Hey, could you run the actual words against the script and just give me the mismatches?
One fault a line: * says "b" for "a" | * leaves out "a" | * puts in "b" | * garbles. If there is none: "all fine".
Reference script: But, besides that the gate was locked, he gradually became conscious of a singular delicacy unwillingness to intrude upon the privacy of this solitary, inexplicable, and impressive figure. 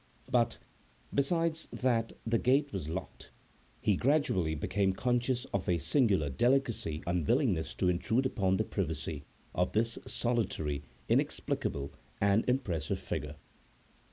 all fine